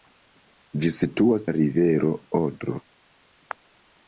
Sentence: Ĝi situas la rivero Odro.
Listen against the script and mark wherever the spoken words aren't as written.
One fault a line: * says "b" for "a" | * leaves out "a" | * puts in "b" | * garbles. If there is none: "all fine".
all fine